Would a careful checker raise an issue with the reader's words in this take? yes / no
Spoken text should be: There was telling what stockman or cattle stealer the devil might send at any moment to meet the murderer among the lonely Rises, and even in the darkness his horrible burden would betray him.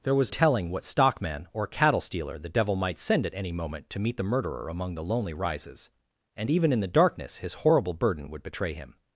no